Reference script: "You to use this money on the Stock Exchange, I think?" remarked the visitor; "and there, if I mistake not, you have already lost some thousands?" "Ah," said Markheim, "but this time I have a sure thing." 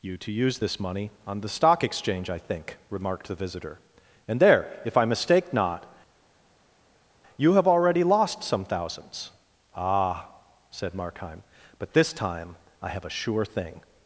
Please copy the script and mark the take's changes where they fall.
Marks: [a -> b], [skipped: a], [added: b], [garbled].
"You to use this money on the Stock Exchange, I think?" remarked the visitor; "and there, if I mistake not, you have already lost some thousands?" "Ah," said Markheim, "but this time I have a sure thing."